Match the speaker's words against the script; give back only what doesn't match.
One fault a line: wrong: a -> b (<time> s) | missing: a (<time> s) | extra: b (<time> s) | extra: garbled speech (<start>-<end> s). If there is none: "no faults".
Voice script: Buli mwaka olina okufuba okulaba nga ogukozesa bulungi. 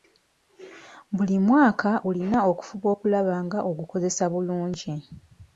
no faults